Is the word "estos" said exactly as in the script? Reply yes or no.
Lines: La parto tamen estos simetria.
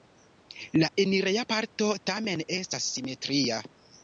no